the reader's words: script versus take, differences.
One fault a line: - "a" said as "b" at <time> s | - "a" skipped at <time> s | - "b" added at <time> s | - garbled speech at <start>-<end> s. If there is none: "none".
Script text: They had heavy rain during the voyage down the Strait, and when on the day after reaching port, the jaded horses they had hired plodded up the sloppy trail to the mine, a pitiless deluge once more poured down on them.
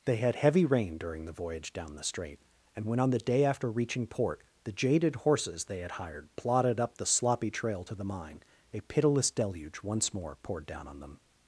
none